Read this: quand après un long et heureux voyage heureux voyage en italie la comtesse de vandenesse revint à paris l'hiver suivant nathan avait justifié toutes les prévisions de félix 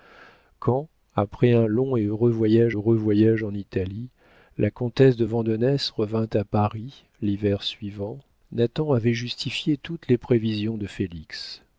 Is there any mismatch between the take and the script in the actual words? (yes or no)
no